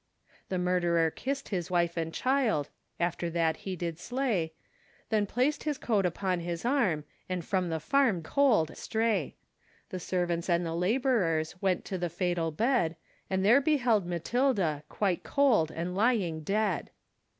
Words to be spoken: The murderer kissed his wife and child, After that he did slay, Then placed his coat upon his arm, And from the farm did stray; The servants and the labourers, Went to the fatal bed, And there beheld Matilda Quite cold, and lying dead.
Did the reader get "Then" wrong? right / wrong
right